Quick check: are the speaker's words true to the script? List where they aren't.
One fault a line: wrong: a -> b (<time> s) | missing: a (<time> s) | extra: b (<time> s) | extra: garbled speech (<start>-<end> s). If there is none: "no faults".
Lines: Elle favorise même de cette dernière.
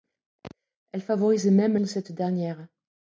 no faults